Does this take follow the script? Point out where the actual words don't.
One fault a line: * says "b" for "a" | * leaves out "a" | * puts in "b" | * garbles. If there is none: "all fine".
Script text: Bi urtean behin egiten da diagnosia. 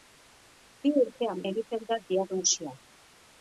* leaves out "behin"